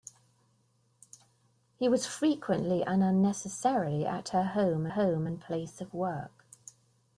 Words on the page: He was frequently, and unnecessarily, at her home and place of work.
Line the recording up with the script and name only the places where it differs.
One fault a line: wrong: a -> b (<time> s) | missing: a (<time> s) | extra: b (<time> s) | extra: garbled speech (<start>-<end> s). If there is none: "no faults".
extra: home (4.9 s)